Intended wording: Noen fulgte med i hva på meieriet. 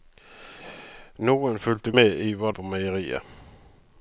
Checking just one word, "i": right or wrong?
right